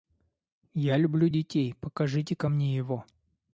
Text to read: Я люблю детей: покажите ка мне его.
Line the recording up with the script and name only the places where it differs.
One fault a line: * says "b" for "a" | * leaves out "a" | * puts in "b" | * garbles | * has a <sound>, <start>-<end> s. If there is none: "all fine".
all fine